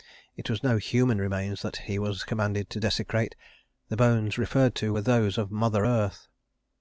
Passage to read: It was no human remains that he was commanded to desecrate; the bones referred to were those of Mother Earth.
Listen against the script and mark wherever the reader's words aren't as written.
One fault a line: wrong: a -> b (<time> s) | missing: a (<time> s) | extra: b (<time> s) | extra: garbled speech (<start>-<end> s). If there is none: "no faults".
no faults